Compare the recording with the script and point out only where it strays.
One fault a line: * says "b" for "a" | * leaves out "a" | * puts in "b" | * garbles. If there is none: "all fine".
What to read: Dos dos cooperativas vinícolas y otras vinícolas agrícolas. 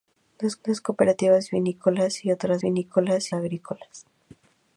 all fine